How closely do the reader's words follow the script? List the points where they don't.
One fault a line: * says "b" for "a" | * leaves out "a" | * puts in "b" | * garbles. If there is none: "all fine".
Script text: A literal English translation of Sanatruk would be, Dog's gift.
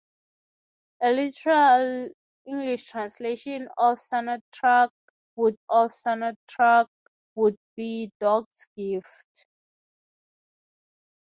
* puts in "of Sanatruk would"